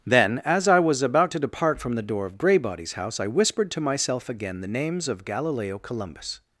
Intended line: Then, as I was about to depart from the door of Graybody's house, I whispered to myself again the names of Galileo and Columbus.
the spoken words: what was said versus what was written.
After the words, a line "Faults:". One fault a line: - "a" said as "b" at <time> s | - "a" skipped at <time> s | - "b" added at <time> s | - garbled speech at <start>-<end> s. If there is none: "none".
Then, as I was about to depart from the door of Graybody's house, I whispered to myself again the names of Galileo Columbus.
Faults:
- "and" skipped at 5.8 s